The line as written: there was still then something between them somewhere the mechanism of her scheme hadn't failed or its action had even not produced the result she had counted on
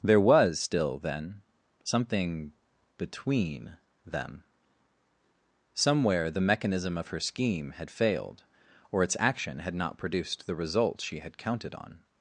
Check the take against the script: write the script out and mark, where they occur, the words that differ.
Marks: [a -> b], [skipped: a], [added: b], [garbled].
there was still then something between them somewhere the mechanism of her scheme [hadn't -> had] failed or its action had [skipped: even] not produced the result she had counted on